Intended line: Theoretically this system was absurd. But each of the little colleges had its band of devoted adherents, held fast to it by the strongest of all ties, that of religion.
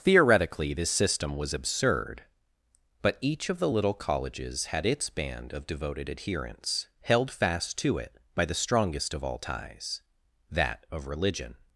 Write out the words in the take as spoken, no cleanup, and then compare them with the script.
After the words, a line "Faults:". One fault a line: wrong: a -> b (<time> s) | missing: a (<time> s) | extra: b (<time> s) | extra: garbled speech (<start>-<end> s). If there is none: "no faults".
Theoretically this system was absurd. But each of the little colleges had its band of devoted adherents, held fast to it by the strongest of all ties, that of religion.
Faults:
no faults